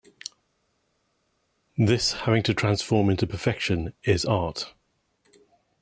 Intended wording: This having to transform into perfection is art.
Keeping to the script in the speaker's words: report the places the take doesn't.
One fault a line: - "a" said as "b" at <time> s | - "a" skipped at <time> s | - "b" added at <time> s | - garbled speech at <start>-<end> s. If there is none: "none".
none